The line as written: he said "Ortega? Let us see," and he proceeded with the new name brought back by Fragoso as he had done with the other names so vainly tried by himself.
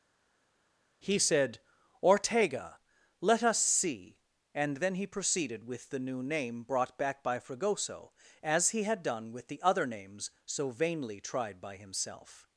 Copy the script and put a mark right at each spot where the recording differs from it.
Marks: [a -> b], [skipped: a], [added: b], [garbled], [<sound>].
he said "Ortega? Let us see," and [added: then] he proceeded with the new name brought back by Fragoso as he had done with the other names so vainly tried by himself.